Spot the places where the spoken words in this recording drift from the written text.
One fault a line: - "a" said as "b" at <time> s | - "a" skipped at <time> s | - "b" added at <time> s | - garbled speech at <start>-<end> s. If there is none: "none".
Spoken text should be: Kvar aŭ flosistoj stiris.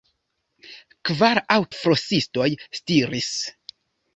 none